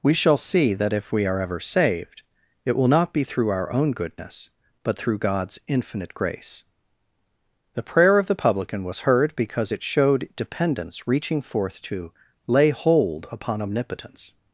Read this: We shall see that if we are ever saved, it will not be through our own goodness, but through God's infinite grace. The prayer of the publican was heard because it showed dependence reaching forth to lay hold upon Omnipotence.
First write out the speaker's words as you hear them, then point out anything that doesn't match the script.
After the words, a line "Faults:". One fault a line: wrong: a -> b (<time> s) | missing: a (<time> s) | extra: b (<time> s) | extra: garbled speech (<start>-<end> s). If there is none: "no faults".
We shall see that if we are ever saved, it will not be through our own goodness, but through God's infinite grace. The prayer of the publican was heard because it showed dependence reaching forth to lay hold upon Omnipotence.
Faults:
no faults